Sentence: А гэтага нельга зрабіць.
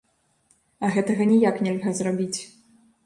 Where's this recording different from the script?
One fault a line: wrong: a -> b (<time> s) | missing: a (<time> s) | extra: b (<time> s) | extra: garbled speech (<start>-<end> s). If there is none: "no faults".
extra: ніяк (1.3 s)